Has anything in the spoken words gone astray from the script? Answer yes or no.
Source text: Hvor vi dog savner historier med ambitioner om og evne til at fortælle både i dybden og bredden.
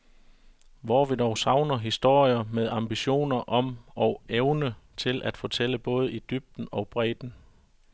no